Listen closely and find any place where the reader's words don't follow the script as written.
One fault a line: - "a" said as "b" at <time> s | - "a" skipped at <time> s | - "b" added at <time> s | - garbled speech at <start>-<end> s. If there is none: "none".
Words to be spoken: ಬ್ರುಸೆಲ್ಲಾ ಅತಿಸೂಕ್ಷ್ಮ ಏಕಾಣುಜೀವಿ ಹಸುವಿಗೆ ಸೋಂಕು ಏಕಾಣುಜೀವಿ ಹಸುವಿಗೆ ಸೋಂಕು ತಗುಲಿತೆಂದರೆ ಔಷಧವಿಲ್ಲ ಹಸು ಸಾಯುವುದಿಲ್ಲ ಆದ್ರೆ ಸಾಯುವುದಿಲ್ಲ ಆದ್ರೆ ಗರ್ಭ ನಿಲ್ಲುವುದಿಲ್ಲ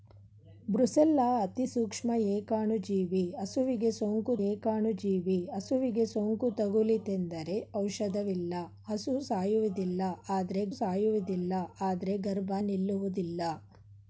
none